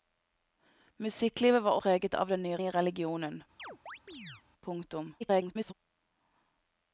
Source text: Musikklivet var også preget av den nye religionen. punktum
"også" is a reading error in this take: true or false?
true